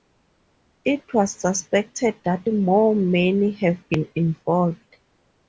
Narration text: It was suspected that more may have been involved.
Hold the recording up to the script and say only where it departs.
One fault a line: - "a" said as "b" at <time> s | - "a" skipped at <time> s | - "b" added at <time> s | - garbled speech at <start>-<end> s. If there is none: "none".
none